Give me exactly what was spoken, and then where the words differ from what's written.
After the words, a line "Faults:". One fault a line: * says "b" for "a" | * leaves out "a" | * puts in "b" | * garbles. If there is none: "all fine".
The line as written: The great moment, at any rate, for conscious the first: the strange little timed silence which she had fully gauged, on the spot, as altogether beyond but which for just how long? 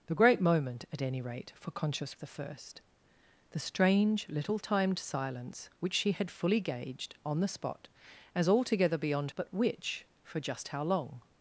The great moment, at any rate, for conscious the first: the strange little timed silence which she had fully gauged, on the spot, as altogether beyond but which for just how long?
Faults:
all fine